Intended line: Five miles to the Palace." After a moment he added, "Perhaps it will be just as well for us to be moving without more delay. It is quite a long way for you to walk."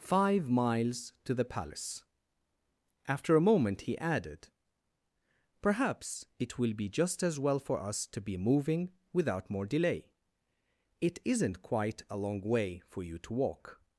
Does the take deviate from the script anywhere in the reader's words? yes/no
yes